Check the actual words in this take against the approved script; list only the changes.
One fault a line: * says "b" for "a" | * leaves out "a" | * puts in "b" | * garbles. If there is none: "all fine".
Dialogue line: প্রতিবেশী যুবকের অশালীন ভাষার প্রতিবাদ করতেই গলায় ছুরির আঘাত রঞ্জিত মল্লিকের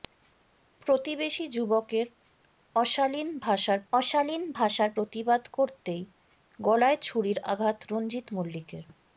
* puts in "অশালীন ভাষার"